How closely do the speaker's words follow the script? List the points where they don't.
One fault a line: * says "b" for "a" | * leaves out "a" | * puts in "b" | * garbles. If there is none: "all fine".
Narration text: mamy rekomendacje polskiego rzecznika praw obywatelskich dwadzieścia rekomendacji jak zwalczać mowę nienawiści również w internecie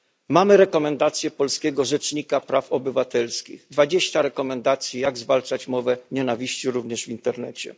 all fine